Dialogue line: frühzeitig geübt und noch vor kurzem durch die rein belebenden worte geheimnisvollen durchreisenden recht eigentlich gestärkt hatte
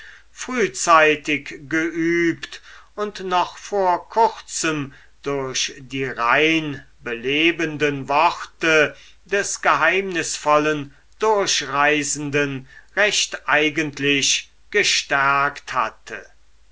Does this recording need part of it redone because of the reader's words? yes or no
yes